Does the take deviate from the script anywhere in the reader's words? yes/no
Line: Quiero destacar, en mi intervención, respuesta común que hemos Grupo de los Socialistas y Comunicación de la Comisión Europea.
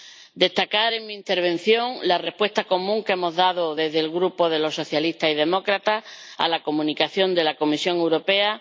yes